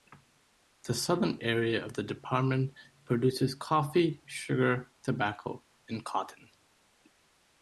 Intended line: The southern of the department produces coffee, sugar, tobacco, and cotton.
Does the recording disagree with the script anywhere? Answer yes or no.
yes